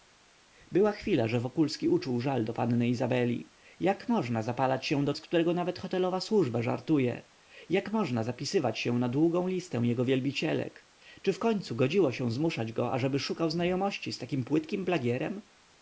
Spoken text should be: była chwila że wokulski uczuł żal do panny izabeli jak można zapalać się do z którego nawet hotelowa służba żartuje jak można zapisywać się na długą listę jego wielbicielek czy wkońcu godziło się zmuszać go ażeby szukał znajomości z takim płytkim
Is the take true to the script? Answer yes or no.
yes